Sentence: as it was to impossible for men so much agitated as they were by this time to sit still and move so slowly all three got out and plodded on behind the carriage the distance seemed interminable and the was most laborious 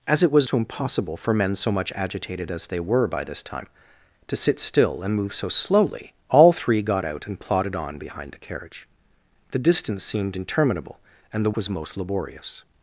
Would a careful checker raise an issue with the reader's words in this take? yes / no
no